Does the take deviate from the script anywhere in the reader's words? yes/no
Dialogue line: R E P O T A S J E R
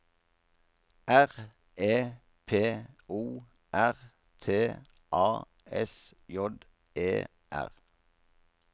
yes